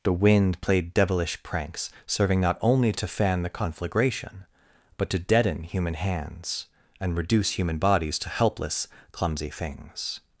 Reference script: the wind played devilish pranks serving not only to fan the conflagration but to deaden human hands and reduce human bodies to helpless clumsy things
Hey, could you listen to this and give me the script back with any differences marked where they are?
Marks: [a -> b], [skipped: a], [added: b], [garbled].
the wind played devilish pranks serving not only to fan the conflagration but to deaden human hands and reduce human bodies to helpless clumsy things